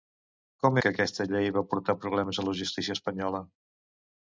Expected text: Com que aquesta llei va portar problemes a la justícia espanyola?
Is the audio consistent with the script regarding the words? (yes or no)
yes